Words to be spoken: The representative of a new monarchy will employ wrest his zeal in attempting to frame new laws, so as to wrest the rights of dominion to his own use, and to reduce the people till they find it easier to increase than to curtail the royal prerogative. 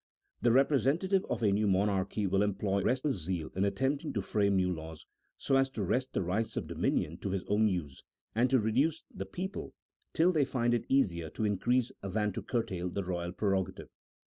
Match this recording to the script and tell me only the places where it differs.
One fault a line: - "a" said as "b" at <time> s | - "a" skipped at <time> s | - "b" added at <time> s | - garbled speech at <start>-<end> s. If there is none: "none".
none